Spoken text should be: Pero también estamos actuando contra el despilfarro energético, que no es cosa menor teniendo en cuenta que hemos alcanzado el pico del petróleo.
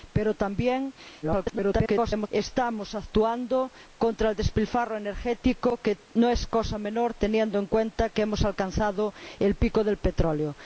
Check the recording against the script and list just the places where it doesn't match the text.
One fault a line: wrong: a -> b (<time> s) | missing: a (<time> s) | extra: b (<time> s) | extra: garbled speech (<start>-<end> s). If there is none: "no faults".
extra: garbled speech (1.2-2.3 s)